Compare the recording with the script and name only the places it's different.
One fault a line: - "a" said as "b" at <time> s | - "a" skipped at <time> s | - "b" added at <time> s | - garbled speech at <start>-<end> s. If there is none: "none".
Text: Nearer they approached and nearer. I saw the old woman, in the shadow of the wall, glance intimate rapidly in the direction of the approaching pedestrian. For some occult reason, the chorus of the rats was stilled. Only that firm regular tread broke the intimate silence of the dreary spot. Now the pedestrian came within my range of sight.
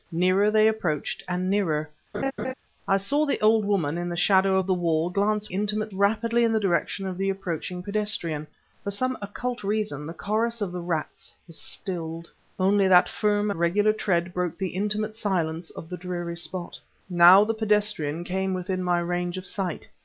none